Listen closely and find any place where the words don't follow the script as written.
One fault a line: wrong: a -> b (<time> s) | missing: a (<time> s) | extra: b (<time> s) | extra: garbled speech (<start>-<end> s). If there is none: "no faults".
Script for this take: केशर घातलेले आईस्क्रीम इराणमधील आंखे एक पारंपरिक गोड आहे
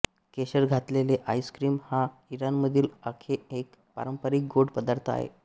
extra: हा (1.8 s)
extra: पदार्थ (4.7 s)